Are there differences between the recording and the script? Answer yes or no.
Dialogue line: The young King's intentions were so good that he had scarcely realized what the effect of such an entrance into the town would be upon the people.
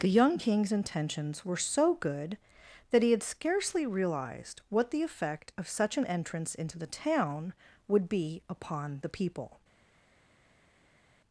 no